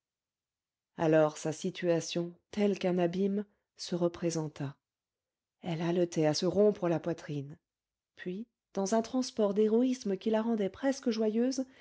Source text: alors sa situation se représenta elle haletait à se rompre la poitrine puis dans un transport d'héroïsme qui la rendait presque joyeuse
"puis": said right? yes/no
yes